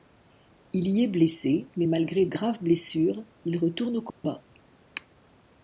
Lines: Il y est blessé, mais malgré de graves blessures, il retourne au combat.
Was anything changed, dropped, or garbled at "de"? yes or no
yes